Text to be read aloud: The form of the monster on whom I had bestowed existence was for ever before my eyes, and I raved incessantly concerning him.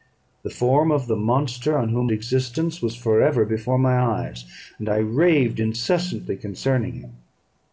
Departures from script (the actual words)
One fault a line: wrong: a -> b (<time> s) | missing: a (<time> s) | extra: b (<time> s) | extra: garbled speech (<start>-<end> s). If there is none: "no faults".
missing: I had bestowed (2.1 s)